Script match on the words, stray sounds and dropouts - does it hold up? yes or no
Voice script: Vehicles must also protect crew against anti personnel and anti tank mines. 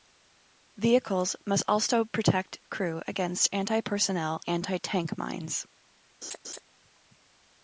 no